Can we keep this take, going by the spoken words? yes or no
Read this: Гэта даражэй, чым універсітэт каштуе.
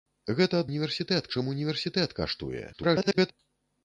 no